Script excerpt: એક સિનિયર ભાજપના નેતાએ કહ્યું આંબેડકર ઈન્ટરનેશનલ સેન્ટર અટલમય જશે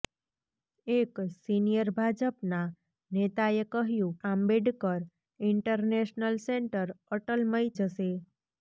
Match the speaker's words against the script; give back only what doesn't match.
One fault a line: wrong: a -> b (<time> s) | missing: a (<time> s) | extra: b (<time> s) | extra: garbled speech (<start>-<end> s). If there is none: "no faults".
no faults